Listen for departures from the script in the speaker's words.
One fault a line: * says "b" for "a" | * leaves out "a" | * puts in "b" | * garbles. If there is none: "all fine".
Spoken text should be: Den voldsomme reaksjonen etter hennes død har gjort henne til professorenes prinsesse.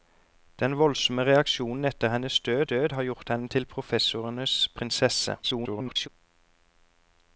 * puts in "død"
* garbles